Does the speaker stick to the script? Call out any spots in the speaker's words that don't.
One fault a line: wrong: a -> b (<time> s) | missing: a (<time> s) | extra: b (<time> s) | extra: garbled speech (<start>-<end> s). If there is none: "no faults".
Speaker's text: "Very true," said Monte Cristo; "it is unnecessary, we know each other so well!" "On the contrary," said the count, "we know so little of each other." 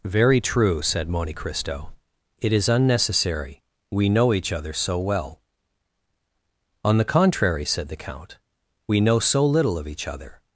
no faults